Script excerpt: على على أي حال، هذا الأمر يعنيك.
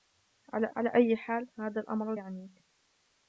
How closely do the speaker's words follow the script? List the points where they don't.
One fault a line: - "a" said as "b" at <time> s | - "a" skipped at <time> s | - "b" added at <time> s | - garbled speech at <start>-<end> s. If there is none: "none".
none